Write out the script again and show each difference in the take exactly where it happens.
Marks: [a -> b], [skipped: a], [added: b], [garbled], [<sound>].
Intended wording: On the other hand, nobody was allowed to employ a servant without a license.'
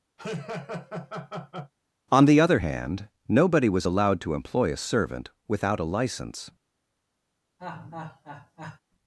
[laugh] On the other hand, nobody was allowed to employ a servant without a license.' [laugh]